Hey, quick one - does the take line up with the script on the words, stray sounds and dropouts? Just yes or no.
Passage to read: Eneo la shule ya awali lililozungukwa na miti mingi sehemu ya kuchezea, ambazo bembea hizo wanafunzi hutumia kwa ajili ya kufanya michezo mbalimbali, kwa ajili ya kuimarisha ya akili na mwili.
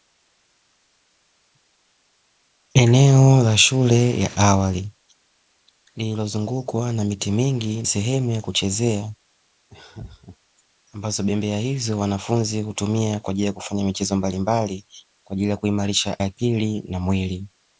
no